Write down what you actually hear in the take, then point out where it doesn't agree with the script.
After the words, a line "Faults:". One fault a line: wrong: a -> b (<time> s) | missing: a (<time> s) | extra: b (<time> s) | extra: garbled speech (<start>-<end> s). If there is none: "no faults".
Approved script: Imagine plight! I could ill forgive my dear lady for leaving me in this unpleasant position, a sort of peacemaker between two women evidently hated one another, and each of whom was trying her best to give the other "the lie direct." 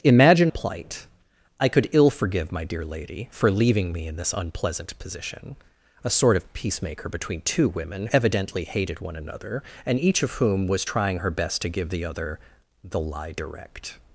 Imagine plight! I could ill forgive my dear lady for leaving me in this unpleasant position, a sort of peacemaker between two women evidently hated one another, and each of whom was trying her best to give the other "the lie direct."
Faults:
no faults